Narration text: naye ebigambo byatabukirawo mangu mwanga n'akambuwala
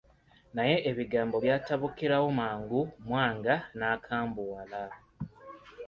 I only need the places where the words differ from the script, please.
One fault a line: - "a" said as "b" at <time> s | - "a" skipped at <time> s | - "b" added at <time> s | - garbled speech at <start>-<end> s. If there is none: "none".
none